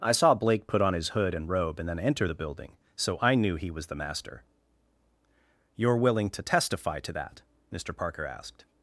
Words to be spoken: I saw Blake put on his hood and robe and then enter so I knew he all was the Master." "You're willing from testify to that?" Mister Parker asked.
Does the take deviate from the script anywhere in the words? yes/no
yes